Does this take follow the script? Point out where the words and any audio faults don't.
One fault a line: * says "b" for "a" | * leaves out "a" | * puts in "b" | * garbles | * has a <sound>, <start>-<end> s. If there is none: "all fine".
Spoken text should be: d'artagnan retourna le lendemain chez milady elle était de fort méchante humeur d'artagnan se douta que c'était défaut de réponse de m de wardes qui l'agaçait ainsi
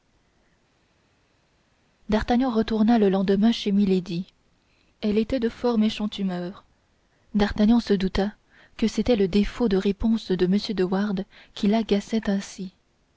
* puts in "le"